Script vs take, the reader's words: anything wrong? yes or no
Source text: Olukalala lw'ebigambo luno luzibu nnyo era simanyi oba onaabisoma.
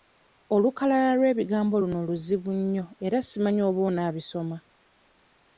no